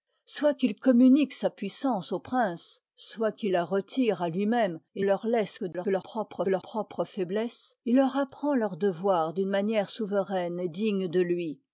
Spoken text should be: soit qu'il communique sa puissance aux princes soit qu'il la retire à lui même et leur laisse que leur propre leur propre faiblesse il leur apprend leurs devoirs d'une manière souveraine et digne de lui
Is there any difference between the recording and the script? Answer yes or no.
no